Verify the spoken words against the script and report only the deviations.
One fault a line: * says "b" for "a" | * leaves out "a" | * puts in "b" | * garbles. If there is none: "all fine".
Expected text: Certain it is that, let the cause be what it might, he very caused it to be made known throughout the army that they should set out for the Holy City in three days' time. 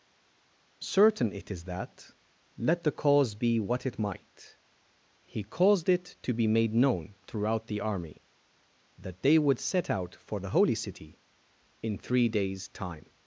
* leaves out "very"
* says "would" for "should"